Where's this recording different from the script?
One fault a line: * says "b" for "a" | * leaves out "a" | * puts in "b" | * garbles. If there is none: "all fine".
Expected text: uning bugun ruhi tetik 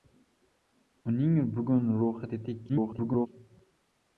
* garbles